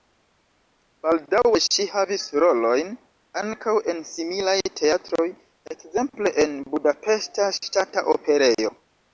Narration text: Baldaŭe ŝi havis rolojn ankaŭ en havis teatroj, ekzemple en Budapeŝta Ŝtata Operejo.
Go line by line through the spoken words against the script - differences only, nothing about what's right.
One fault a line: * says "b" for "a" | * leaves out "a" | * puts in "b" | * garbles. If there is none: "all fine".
* says "similaj" for "havis"